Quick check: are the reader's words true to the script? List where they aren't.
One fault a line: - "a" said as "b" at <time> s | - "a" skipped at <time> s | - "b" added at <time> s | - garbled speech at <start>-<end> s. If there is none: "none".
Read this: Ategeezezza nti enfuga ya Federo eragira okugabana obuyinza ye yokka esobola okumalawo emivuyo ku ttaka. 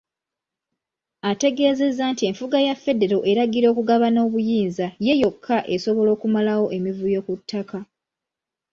none